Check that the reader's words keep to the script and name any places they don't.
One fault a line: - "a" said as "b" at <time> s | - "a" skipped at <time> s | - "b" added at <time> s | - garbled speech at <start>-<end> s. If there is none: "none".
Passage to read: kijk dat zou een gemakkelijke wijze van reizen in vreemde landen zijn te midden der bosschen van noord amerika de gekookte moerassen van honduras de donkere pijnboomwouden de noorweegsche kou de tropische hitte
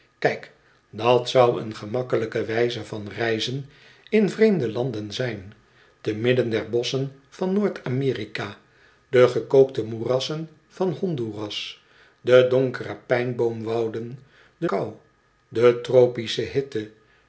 - "noorweegsche" skipped at 14.7 s